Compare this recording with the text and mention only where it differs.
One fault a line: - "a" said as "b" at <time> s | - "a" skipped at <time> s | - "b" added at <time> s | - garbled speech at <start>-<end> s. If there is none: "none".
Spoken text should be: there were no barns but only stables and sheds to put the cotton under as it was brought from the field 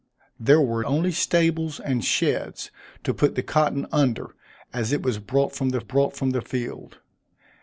- "no barns but" skipped at 0.8 s
- "brought from the" added at 5.8 s